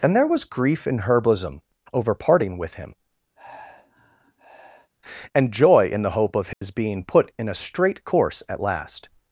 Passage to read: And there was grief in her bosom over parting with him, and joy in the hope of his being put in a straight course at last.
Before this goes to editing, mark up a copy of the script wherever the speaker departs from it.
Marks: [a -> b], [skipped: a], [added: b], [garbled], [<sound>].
And there was grief in her bosom over parting with him, [sigh] and joy in the hope of his [dropout] being put in a straight course at last.